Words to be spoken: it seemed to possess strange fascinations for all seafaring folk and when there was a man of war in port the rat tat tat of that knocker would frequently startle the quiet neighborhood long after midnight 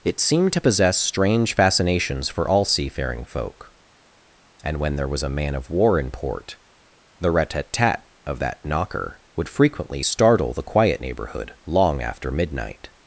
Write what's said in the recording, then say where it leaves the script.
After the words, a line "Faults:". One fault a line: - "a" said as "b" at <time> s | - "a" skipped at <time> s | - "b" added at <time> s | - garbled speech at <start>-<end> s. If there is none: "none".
it seemed to possess strange fascinations for all seafaring folk and when there was a man of war in port the rat tat tat of that knocker would frequently startle the quiet neighborhood long after midnight
Faults:
none